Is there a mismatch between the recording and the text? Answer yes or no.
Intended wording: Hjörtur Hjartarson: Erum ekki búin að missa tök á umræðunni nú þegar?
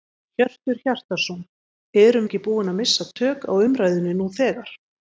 no